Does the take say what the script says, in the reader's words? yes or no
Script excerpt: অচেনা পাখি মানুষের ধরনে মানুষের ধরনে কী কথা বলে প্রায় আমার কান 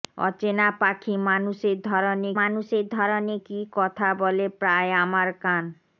yes